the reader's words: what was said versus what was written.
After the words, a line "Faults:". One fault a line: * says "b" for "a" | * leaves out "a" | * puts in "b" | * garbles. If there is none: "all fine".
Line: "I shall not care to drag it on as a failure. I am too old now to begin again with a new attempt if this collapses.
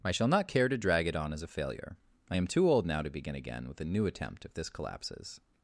"I shall not care to drag it on as a failure. I am too old now to begin again with a new attempt if this collapses.
Faults:
all fine